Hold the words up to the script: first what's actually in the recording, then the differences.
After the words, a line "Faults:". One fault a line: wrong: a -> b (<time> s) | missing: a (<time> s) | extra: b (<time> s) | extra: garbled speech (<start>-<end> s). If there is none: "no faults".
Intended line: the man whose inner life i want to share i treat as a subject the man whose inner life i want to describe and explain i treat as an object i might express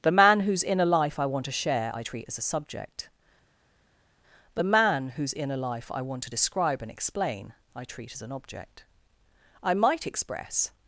the man whose inner life i want to share i treat as a subject the man whose inner life i want to describe and explain i treat as an object i might express
Faults:
no faults